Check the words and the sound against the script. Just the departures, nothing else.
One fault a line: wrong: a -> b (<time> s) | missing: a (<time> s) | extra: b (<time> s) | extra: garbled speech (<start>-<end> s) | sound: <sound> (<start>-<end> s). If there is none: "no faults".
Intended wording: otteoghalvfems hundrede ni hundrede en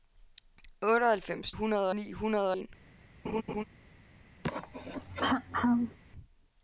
sound: laugh (3.2-3.6 s)
sound: throat clearing (4.4-6.0 s)